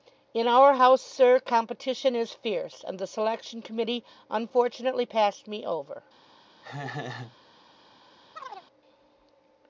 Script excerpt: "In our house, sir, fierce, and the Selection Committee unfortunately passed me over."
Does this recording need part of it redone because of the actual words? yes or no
yes